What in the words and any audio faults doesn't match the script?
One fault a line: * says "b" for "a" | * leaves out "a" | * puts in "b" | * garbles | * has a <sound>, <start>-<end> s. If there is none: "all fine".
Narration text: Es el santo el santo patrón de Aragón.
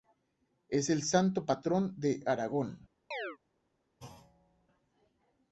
* leaves out "el santo"
* has a chirp, 3.1-3.4 s
* has a thud, 4.0-4.7 s